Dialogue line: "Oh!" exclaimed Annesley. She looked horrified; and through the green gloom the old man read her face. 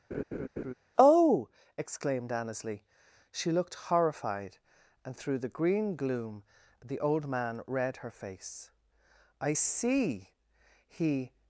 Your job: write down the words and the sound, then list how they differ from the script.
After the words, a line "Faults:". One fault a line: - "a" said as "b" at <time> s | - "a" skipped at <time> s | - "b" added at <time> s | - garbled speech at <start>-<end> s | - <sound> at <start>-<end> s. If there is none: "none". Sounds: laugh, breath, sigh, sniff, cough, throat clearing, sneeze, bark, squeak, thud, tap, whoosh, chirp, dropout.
"Oh!" exclaimed Annesley. She looked horrified; and through the green gloom the old man read her face. "I see!" he
Faults:
- laugh at 0.1-0.7 s
- "I see he" added at 9.4 s